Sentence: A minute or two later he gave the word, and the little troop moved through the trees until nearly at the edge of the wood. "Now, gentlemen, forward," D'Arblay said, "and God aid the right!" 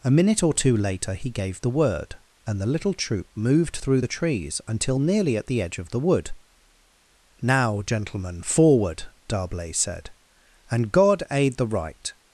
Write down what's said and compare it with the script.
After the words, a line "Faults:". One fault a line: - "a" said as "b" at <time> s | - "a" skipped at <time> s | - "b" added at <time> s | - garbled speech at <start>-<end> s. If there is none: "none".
A minute or two later he gave the word, and the little troop moved through the trees until nearly at the edge of the wood. "Now, gentlemen, forward," D'Arblay said, "and God aid the right!"
Faults:
none